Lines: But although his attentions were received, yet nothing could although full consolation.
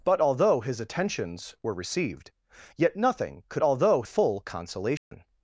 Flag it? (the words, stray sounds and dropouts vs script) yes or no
yes